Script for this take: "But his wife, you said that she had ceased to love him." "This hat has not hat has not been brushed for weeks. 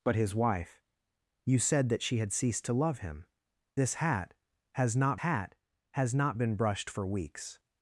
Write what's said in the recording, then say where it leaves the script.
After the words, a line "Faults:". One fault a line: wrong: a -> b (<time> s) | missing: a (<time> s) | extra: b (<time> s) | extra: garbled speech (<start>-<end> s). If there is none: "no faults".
"But his wife, you said that she had ceased to love him." "This hat has not hat has not been brushed for weeks.
Faults:
no faults